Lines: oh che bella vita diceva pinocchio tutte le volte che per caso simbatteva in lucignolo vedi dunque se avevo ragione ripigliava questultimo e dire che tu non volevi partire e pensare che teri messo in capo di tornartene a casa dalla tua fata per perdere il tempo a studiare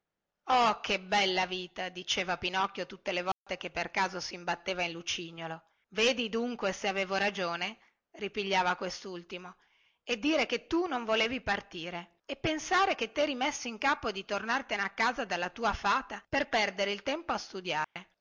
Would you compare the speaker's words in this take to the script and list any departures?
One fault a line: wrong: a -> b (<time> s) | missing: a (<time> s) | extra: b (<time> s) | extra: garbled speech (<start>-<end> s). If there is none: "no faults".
no faults